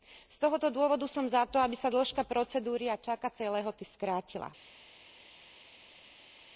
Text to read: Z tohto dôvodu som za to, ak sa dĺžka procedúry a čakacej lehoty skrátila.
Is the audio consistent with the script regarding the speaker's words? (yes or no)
no